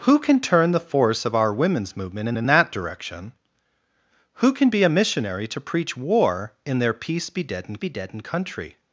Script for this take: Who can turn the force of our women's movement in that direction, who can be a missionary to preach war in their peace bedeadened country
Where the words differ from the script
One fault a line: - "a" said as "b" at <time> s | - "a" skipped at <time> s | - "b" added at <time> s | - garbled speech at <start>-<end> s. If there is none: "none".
- "in" added at 2.4 s
- "bedeadened" added at 7.8 s